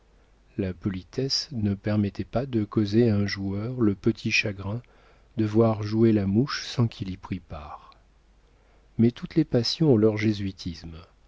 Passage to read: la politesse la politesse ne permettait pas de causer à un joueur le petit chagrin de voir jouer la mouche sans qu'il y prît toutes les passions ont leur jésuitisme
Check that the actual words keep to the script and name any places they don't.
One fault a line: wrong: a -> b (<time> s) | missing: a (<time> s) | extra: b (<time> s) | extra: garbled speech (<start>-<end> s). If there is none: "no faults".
missing: la politesse (1.5 s)
extra: part mais (7.4 s)